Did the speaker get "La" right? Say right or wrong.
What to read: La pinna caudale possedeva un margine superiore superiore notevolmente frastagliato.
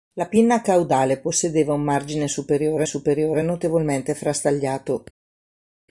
right